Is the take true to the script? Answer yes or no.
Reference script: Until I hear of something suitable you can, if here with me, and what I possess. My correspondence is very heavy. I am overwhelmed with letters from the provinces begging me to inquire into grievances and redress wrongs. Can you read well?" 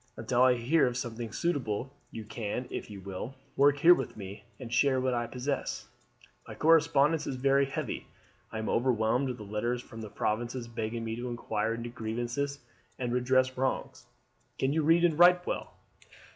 no